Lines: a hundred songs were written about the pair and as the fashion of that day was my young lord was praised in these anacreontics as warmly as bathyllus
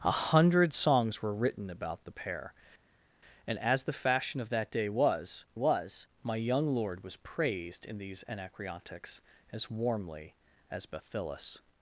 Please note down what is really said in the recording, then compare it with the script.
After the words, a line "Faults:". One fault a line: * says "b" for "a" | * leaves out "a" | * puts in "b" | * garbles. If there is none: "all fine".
a hundred songs were written about the pair and as the fashion of that day was was my young lord was praised in these anacreontics as warmly as bathyllus
Faults:
* puts in "was"